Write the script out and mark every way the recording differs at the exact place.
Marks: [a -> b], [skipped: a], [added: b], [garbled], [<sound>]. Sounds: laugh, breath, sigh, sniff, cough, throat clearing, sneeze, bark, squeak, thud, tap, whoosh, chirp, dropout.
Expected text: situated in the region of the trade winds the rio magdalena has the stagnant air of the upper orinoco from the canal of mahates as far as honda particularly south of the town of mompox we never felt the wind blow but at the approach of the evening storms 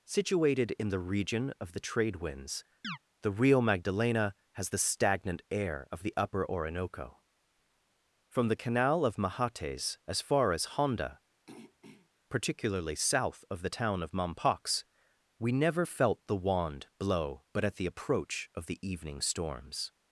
situated in the region of the trade winds [chirp] the rio magdalena has the stagnant air of the upper orinoco from the canal of mahates as far as honda [throat clearing] particularly south of the town of mompox we never felt the [wind -> wand] blow but at the approach of the evening storms